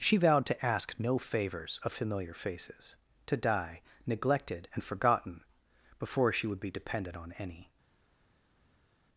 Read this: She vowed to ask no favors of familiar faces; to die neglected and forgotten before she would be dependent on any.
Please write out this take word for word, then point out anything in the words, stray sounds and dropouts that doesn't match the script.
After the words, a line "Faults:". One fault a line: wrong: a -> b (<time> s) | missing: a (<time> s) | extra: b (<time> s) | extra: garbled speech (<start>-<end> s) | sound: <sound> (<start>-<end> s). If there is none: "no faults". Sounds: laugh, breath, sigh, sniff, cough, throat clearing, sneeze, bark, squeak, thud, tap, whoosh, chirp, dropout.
She vowed to ask no favors of familiar faces; to die neglected and forgotten before she would be dependent on any.
Faults:
no faults